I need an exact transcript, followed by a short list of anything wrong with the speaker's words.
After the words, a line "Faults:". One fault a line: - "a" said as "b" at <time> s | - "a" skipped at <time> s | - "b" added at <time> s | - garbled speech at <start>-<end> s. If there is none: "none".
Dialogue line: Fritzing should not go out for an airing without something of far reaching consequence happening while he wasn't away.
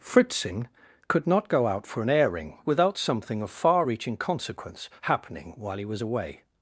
Fritzing could not go out for an airing without something of far reaching consequence happening while he was away.
Faults:
- "should" said as "could" at 1.1 s
- "wasn't" said as "was" at 5.9 s